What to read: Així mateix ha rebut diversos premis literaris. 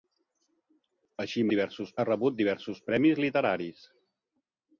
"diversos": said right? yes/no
yes